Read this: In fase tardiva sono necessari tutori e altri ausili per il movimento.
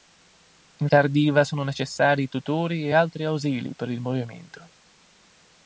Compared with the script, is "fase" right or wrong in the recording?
wrong